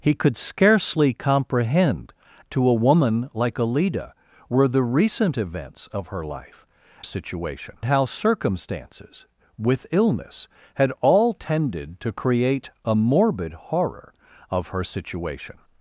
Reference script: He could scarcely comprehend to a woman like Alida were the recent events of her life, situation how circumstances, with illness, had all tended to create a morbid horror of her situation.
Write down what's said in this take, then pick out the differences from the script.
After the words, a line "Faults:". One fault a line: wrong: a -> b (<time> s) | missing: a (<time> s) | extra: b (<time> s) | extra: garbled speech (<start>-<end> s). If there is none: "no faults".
He could scarcely comprehend to a woman like Alida were the recent events of her life, situation how circumstances, with illness, had all tended to create a morbid horror of her situation.
Faults:
no faults